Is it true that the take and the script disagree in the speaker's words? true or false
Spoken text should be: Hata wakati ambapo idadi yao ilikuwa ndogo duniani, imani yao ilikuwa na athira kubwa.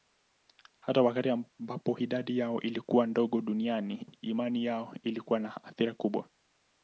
false